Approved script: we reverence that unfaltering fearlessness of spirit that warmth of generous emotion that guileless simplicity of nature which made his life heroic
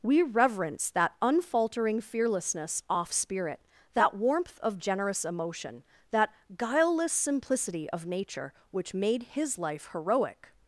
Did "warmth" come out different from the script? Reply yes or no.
no